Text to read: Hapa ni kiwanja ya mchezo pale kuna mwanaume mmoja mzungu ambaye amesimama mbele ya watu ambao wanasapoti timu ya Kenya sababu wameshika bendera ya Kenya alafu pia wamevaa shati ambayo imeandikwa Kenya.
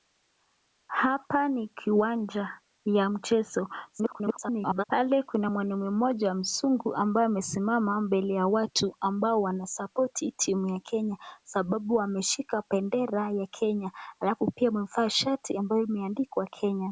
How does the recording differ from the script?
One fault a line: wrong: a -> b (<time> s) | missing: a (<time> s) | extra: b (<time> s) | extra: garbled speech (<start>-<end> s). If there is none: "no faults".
extra: garbled speech (3.9-4.8 s)